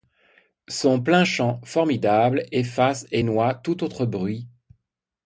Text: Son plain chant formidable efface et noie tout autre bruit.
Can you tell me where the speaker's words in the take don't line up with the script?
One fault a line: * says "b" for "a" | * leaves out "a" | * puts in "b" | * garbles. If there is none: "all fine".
all fine